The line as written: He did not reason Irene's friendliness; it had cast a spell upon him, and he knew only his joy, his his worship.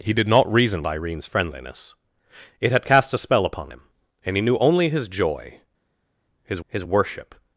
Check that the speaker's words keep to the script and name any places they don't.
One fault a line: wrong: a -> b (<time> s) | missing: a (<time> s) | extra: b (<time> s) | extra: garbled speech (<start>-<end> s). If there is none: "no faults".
no faults